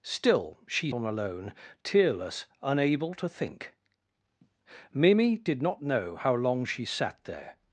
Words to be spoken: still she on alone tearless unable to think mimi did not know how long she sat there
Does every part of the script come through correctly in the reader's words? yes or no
yes